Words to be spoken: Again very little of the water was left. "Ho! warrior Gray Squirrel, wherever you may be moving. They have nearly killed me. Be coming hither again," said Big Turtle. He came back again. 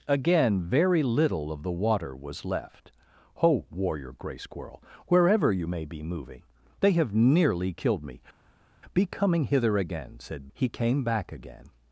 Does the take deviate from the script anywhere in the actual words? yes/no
yes